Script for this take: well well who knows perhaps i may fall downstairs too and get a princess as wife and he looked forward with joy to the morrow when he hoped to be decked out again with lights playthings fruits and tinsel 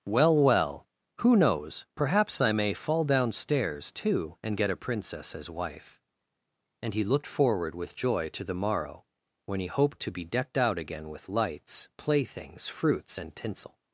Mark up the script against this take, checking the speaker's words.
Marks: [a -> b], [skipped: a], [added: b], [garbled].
well well who knows perhaps i may fall downstairs too and get a princess as wife and he looked forward with joy to the morrow when he hoped to be decked out again with lights playthings fruits and tinsel